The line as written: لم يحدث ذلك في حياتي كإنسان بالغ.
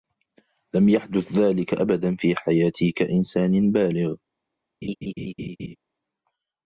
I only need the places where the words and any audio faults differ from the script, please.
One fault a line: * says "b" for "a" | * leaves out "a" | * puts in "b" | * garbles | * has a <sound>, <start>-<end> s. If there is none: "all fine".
* puts in "أبدا"
* has a laugh, 4.8-5.8 s